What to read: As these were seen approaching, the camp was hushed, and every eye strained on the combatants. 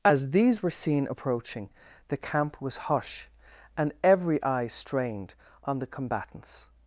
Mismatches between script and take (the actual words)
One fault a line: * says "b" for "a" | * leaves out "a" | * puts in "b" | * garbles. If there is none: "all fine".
* says "hush" for "hushed"